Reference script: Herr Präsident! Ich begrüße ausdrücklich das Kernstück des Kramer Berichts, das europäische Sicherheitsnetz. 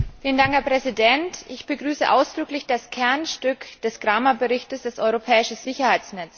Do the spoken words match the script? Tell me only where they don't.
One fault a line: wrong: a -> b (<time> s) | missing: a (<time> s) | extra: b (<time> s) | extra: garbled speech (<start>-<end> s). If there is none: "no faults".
no faults